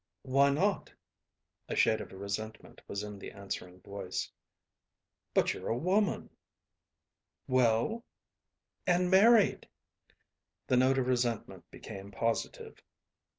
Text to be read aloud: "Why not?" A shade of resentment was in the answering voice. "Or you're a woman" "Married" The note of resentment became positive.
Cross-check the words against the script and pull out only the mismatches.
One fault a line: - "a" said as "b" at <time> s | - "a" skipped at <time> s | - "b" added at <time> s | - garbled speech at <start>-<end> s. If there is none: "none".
- "Or" said as "But" at 5.3 s
- "Well And" added at 7.5 s